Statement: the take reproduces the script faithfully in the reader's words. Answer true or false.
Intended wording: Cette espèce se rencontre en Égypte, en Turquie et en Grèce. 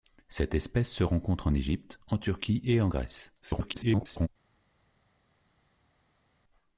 false